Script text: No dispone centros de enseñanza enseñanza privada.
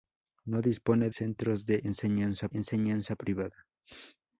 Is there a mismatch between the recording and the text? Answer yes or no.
no